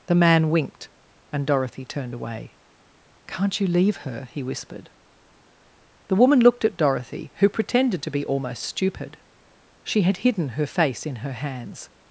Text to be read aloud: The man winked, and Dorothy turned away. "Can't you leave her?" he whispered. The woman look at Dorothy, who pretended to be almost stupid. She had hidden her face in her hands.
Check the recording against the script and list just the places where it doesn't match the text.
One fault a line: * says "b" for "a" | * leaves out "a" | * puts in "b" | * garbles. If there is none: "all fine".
* says "looked" for "look"